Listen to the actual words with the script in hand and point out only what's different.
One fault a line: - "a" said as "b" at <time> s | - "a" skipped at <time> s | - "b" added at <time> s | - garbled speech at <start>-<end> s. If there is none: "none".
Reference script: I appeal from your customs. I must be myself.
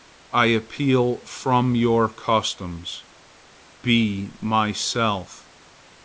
- "I must" skipped at 3.0 s